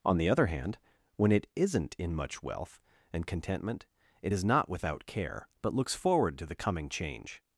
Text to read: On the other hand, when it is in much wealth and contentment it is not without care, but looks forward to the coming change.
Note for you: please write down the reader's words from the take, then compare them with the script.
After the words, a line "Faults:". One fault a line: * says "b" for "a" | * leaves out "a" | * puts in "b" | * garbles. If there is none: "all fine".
On the other hand, when it isn't in much wealth and contentment it is not without care, but looks forward to the coming change.
Faults:
* says "isn't" for "is"